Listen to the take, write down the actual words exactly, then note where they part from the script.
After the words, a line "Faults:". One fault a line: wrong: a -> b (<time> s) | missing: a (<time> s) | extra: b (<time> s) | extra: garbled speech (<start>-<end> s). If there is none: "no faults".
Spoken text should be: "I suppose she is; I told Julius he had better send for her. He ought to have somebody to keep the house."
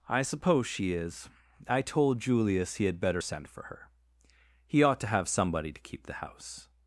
"I suppose she is; I told Julius he had better send for her. He ought to have somebody to keep the house."
Faults:
no faults